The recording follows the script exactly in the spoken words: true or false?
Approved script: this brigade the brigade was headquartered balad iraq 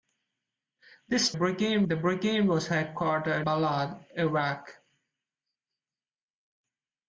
true